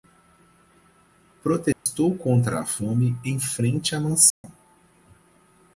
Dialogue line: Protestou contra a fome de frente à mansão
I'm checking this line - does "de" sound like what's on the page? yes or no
no